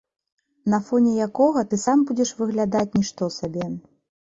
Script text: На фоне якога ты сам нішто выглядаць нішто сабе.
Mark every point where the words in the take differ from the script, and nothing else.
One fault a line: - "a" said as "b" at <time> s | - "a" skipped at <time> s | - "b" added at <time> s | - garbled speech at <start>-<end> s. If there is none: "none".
- "нішто" said as "будзеш" at 2.1 s